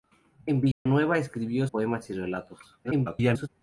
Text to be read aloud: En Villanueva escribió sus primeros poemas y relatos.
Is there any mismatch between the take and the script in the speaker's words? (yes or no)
yes